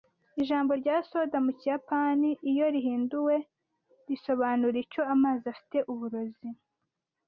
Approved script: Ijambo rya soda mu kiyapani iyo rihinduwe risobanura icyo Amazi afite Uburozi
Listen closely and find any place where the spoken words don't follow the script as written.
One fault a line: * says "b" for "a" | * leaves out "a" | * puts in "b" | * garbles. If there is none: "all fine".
all fine